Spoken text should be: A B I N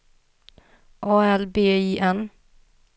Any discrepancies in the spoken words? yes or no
yes